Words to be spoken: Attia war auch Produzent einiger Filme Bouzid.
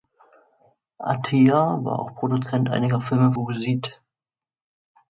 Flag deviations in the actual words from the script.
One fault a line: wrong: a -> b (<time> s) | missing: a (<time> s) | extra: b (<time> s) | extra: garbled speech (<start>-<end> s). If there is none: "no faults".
no faults